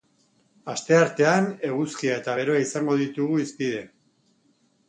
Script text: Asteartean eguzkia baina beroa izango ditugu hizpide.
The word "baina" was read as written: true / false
false